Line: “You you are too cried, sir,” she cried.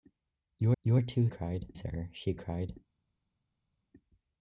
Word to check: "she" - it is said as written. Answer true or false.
true